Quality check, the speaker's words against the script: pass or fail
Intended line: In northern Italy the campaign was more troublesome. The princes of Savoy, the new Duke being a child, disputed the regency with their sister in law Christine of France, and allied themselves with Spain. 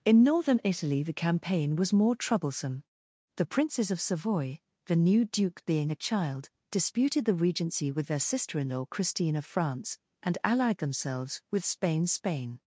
fail